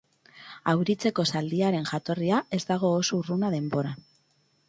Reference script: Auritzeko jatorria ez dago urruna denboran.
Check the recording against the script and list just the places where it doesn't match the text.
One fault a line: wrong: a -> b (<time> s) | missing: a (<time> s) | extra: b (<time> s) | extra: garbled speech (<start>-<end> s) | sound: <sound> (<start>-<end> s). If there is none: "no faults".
extra: zaldiaren (1.3 s)
extra: oso (3.0 s)